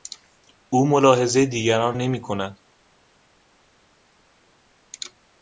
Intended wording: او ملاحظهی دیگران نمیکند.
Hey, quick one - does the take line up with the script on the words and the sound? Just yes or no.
yes